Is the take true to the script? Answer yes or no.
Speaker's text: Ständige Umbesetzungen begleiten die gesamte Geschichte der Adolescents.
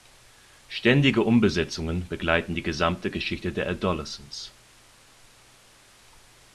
yes